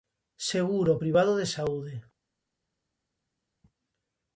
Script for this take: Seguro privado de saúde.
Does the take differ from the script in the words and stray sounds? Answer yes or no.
no